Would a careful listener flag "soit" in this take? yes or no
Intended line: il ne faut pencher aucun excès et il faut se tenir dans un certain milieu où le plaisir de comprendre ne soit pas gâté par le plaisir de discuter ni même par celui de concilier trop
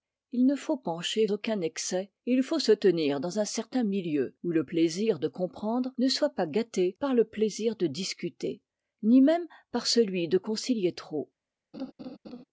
no